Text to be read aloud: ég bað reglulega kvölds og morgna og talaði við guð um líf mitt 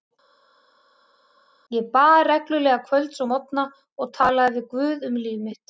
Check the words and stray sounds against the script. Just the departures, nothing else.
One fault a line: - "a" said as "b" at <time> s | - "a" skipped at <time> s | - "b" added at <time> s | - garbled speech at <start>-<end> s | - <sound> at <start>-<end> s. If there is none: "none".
none